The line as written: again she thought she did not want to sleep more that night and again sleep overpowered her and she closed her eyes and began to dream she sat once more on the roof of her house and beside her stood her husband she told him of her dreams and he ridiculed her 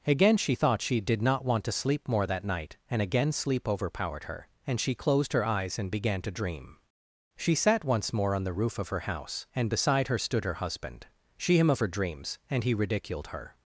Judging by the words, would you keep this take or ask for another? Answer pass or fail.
fail